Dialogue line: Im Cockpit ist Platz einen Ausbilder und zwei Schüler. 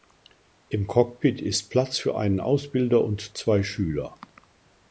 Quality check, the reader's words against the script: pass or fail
fail